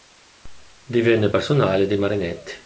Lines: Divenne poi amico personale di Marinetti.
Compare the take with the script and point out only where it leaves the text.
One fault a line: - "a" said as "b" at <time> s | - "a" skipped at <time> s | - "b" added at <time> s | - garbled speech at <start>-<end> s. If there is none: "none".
- "poi amico" skipped at 1.3 s